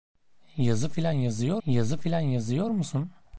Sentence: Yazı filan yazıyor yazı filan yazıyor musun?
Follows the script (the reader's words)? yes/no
yes